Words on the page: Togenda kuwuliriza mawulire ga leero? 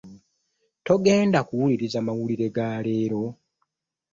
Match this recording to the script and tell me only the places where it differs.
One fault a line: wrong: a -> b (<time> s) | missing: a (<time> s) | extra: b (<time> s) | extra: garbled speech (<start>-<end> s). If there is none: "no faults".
no faults